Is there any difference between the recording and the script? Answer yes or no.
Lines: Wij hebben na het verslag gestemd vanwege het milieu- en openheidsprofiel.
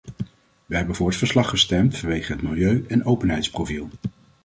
yes